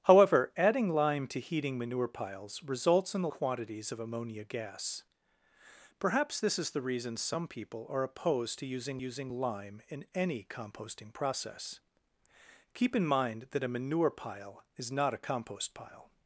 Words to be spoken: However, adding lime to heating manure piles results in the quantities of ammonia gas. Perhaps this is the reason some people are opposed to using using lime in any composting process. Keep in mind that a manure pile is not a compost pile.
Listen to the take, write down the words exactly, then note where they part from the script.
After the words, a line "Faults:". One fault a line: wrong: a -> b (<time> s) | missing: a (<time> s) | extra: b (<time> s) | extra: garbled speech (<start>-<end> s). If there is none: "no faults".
However, adding lime to heating manure piles results in the quantities of ammonia gas. Perhaps this is the reason some people are opposed to using using lime in any composting process. Keep in mind that a manure pile is not a compost pile.
Faults:
no faults